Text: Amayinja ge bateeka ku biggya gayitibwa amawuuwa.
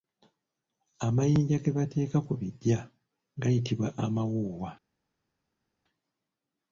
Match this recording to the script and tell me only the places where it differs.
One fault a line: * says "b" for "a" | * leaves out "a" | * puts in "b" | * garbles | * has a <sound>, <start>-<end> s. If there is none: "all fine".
all fine